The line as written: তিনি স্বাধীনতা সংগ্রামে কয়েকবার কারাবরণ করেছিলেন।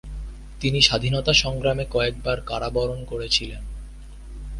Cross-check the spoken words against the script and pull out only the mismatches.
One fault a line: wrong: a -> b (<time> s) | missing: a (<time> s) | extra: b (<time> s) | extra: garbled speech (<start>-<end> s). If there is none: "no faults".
no faults